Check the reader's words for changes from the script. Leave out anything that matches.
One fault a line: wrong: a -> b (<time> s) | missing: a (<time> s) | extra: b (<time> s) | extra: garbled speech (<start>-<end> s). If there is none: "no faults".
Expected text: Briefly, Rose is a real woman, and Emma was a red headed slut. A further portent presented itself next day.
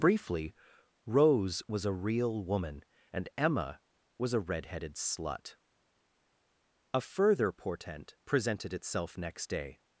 wrong: is -> was (1.7 s)